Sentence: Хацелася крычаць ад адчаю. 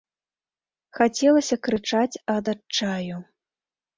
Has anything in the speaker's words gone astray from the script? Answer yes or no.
no